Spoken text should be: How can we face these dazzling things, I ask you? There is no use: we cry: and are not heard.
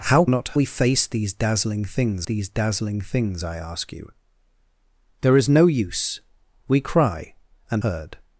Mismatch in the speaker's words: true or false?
true